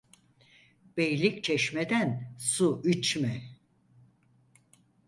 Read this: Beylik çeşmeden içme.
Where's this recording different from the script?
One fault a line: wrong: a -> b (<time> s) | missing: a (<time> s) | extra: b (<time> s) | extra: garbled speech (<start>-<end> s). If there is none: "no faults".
extra: su (2.4 s)